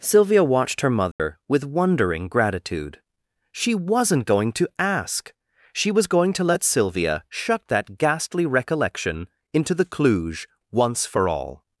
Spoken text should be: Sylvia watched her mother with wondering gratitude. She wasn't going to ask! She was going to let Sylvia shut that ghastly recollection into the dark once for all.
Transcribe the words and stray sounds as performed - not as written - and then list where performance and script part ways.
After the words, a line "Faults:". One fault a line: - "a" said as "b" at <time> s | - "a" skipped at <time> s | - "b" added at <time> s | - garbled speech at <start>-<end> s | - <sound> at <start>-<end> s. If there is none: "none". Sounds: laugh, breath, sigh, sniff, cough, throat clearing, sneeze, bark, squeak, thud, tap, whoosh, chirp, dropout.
Sylvia watched her mother with wondering gratitude. She wasn't going to ask! She was going to let Sylvia shut that ghastly recollection into the cluj once for all.
Faults:
- dropout at 1.1-1.2 s
- "dark" said as "cluj" at 9.8 s